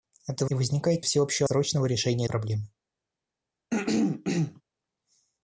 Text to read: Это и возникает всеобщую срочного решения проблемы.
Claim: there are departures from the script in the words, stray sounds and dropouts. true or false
true